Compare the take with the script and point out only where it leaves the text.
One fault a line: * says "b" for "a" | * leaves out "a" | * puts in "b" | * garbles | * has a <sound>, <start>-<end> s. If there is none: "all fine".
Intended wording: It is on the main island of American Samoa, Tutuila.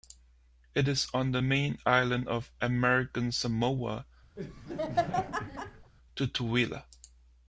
* has a laugh, 4.4-5.9 s